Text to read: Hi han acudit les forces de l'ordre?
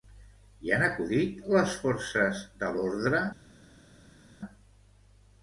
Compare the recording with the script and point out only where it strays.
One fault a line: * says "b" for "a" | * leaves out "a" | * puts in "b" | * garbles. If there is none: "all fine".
all fine